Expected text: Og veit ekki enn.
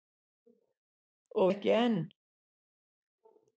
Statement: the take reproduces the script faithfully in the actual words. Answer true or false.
false